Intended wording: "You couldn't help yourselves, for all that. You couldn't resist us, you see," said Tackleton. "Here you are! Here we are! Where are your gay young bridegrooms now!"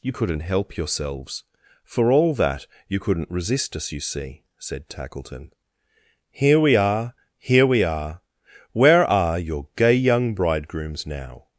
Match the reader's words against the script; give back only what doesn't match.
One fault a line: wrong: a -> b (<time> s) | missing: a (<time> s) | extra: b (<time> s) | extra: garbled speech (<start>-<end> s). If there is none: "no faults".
wrong: you -> we (6.6 s)